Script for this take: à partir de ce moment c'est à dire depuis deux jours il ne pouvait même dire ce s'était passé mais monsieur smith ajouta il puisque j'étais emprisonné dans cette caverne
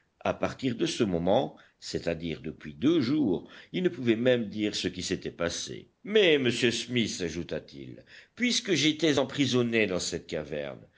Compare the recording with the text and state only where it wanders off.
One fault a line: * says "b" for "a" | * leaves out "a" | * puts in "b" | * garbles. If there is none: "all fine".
* puts in "qui"
* puts in "t"